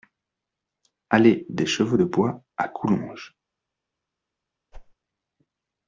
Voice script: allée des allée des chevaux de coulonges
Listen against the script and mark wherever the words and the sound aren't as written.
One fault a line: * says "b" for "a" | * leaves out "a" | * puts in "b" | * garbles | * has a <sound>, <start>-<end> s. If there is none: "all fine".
* says "chevaux de bois à" for "allée des chevaux de"
* has a whoosh, 4.7-4.9 s